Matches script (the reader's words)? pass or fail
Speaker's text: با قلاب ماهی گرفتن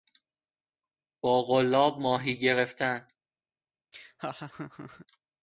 pass